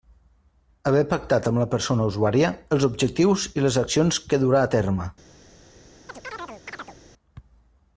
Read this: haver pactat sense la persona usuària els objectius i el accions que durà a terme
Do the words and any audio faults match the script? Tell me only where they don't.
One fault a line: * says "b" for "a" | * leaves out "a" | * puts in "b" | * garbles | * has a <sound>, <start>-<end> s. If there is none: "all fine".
* says "amb" for "sense"
* says "les" for "el"
* has a chirp, 6.1-7.0 s